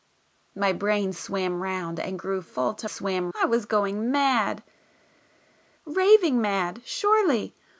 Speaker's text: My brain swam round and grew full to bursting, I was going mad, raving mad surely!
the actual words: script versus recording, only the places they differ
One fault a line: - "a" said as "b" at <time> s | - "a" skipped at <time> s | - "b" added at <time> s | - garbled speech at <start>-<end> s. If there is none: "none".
- "bursting" said as "swam" at 2.8 s